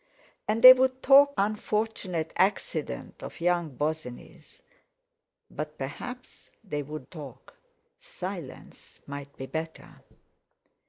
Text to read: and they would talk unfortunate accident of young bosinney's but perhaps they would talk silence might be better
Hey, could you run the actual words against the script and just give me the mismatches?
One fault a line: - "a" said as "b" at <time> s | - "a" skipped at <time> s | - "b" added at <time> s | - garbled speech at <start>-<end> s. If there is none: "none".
none